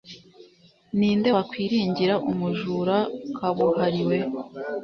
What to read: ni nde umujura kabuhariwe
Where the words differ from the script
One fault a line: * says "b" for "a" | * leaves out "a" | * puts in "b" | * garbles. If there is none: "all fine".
* puts in "wakwiringira"